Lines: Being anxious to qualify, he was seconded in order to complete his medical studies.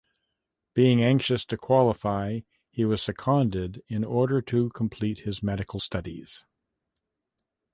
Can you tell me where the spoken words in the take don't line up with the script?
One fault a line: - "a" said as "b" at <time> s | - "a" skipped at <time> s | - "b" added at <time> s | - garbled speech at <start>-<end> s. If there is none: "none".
none